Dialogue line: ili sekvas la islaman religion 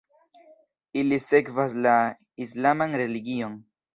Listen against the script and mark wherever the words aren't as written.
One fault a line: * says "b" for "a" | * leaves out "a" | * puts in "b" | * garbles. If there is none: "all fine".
all fine